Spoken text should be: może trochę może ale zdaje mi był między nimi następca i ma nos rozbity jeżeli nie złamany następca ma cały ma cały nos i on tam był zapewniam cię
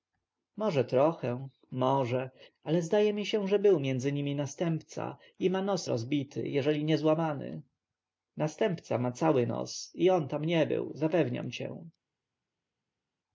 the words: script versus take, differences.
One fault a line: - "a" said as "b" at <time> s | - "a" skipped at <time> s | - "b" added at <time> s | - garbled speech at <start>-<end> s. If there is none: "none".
- "się że" added at 3.2 s
- "ma cały" skipped at 9.5 s
- "nie" added at 10.4 s